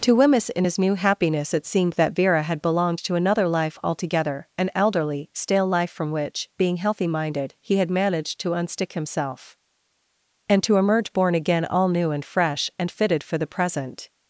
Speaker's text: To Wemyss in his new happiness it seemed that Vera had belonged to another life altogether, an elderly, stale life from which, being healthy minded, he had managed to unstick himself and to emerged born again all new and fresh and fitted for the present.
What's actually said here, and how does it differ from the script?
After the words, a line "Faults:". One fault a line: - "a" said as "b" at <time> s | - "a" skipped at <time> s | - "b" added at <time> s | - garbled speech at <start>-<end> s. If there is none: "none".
To Wemyss in his new happiness it seemed that Vera had belonged to another life altogether, an elderly, stale life from which, being healthy minded, he had managed to unstick himself and to emerge born again all new and fresh and fitted for the present.
Faults:
- "emerged" said as "emerge" at 10.8 s